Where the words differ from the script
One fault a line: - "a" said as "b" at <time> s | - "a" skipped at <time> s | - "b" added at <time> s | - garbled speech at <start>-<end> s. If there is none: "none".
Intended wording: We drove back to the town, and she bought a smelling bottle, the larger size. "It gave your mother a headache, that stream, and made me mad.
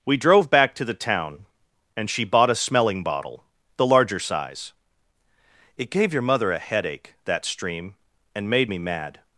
none